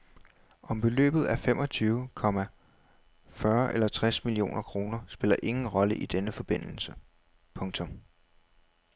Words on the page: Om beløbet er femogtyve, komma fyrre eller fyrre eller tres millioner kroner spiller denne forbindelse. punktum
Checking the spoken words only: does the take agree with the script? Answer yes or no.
no